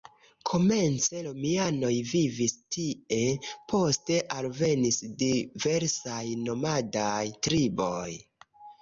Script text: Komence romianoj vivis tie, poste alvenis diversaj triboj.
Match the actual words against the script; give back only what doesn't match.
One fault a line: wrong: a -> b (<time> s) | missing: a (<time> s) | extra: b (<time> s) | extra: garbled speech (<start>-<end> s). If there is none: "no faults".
extra: nomadaj (6.4 s)